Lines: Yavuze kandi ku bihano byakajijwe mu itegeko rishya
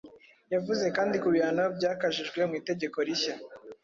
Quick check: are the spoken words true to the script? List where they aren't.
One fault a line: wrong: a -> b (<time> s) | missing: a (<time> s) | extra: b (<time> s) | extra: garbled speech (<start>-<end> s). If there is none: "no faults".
no faults